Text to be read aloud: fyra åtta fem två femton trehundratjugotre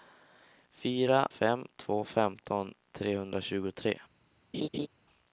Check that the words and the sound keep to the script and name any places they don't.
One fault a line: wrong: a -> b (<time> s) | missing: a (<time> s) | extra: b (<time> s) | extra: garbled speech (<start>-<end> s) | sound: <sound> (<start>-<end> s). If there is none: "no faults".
missing: åtta (1.3 s)
sound: laugh (4.5-4.9 s)